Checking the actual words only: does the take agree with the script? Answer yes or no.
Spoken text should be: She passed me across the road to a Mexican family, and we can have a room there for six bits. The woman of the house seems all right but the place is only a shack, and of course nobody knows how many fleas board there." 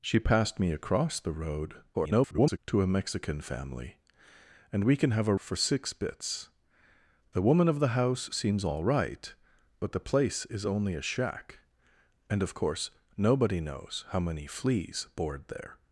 no